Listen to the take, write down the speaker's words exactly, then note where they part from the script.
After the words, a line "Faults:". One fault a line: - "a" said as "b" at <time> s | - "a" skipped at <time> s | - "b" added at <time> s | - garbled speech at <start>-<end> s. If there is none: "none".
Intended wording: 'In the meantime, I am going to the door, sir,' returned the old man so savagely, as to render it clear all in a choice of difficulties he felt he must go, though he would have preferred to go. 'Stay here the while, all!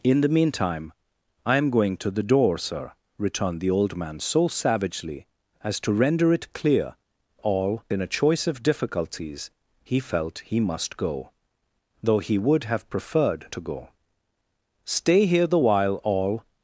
'In the meantime, I am going to the door, sir,' returned the old man so savagely, as to render it clear all in a choice of difficulties he felt he must go, though he would have preferred to go. 'Stay here the while, all!
Faults:
none